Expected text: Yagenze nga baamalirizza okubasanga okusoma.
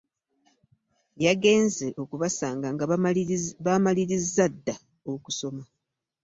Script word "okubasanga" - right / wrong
wrong